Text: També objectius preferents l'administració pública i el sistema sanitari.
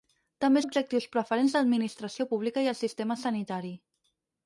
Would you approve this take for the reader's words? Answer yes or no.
yes